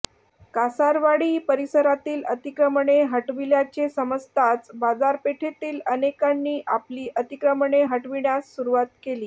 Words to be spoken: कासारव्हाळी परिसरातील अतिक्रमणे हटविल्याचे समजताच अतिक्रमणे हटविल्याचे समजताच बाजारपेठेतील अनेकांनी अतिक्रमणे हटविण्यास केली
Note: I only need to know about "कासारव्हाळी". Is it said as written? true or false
true